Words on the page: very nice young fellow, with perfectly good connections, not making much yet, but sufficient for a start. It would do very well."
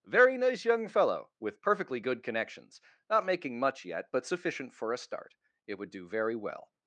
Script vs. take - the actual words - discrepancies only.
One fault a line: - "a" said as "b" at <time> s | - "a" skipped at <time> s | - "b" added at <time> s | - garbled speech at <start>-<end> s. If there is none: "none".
none